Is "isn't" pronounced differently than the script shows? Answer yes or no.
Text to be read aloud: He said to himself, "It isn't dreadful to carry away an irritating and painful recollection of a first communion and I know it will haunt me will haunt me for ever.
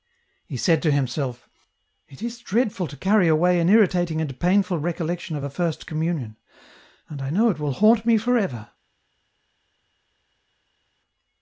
yes